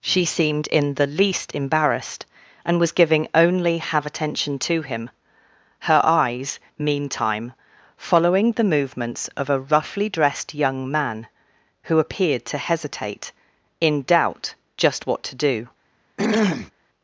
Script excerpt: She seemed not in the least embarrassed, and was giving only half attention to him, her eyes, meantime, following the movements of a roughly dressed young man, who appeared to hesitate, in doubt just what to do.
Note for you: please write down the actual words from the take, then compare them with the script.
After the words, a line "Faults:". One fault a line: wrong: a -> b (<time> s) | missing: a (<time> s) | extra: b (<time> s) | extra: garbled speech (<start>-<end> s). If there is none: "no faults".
She seemed in the least embarrassed, and was giving only have attention to him, her eyes, meantime, following the movements of a roughly dressed young man, who appeared to hesitate, in doubt just what to do.
Faults:
missing: not (0.7 s)
wrong: half -> have (3.8 s)